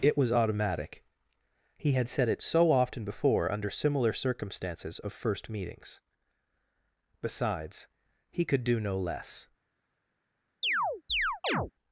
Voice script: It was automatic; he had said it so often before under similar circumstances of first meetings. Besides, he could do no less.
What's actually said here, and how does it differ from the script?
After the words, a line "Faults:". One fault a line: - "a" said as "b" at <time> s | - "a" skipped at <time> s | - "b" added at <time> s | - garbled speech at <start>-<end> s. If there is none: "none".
It was automatic; he had said it so often before under similar circumstances of first meetings. Besides, he could do no less.
Faults:
none